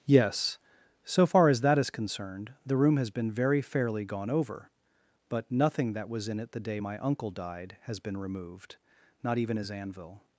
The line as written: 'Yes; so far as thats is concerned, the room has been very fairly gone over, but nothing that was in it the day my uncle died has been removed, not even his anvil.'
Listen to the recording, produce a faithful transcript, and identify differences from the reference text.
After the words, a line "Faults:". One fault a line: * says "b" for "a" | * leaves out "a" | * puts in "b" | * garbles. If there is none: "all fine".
'Yes; so far as that is concerned, the room has been very fairly gone over, but nothing that was in it the day my uncle died has been removed, not even his anvil.'
Faults:
* says "that" for "thats"